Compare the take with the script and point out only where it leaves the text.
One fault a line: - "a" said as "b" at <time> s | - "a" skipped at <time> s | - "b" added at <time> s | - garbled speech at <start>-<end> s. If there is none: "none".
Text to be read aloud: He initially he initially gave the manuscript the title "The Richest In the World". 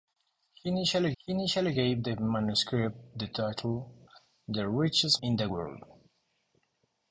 none